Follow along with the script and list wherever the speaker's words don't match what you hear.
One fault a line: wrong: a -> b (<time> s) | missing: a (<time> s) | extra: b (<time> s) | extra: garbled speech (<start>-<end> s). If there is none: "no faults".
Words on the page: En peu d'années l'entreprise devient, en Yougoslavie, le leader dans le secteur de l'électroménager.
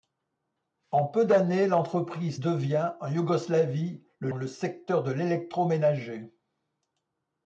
missing: leader dans (4.3 s)